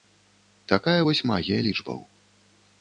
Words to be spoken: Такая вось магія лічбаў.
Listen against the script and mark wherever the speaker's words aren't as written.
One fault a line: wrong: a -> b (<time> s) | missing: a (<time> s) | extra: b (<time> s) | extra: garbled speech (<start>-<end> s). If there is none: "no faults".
no faults